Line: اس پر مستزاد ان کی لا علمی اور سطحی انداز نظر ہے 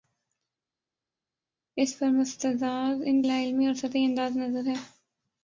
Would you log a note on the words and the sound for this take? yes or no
yes